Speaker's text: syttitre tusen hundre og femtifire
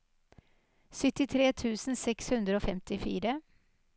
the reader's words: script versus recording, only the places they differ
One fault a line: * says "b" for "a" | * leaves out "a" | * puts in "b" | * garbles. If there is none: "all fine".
* puts in "seks"